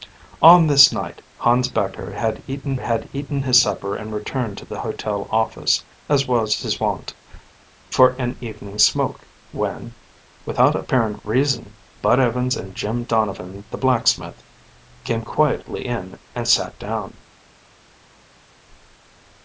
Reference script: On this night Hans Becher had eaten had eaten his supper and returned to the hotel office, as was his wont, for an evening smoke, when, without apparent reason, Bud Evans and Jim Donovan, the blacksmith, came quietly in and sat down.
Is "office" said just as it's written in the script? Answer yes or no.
yes